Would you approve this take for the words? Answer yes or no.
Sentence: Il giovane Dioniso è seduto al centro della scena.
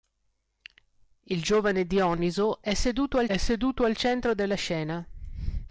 no